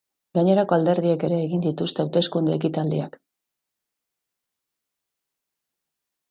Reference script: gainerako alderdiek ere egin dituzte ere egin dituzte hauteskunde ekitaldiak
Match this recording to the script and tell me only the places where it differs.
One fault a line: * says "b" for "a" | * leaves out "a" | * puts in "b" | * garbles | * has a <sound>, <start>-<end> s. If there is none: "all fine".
* leaves out "ere egin dituzte"